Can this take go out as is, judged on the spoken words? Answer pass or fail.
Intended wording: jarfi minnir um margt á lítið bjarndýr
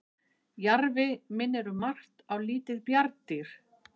pass